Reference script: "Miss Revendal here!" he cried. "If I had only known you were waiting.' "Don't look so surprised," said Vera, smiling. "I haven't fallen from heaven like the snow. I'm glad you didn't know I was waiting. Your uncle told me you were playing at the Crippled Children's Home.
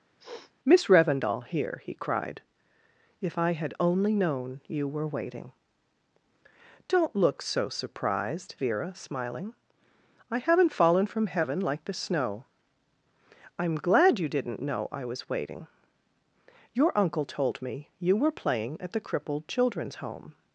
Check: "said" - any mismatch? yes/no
yes